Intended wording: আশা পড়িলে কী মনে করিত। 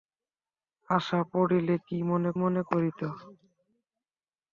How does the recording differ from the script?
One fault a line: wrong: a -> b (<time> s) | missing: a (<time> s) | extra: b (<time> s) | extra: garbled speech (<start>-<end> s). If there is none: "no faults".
extra: মনে (2.4 s)